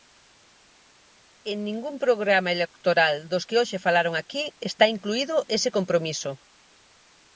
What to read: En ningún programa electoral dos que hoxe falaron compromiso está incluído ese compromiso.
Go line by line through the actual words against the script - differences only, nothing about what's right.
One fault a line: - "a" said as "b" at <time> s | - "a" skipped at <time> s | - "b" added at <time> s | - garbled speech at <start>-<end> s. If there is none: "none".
- "compromiso" said as "aquí" at 4.2 s